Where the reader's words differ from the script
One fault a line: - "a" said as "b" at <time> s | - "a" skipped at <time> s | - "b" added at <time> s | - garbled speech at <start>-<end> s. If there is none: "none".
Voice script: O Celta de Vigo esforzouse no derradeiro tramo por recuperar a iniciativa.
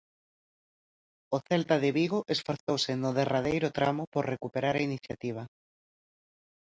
none